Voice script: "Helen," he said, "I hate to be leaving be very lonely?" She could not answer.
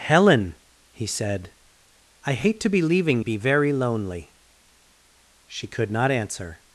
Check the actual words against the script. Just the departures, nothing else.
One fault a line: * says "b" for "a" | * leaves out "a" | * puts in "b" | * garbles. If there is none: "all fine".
all fine